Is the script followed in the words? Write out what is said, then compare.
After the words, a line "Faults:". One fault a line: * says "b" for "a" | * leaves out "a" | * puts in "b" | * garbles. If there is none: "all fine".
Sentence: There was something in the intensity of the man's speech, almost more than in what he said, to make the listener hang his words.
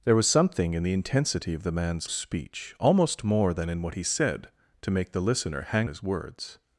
There was something in the intensity of the man's speech, almost more than in what he said, to make the listener hang his words.
Faults:
all fine